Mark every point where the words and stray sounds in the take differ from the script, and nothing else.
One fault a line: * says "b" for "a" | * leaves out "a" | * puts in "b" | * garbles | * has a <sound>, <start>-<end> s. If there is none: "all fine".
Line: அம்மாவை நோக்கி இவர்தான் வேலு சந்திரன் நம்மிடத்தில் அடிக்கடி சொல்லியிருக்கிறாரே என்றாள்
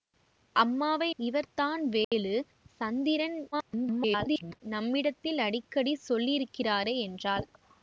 * leaves out "நோக்கி"
* has a dropout, 2.0-2.1 s
* garbles